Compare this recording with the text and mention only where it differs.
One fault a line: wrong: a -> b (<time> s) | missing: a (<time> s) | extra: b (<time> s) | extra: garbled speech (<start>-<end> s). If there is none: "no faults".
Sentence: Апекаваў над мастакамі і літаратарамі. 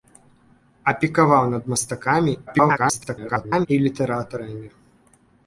extra: garbled speech (2.5-3.7 s)